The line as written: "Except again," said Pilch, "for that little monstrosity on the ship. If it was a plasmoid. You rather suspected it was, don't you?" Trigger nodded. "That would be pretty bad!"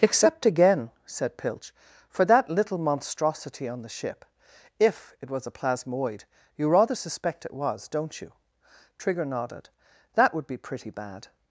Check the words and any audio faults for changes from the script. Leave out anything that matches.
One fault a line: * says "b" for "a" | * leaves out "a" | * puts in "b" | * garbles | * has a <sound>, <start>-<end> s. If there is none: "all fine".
* says "suspect" for "suspected"